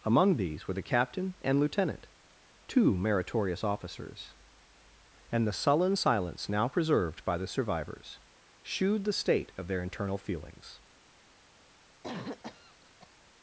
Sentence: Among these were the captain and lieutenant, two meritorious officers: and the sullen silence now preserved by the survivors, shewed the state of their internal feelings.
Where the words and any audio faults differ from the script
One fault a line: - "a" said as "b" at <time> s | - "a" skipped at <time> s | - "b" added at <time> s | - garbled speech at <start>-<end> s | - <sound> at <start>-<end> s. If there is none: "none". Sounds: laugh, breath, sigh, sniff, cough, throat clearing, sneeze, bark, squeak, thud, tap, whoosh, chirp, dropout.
- cough at 12.0-13.2 s